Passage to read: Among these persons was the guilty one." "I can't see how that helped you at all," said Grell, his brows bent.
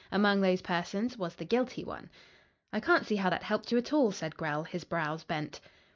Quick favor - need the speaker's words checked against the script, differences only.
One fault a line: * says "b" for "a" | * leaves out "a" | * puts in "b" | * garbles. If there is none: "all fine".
* says "those" for "these"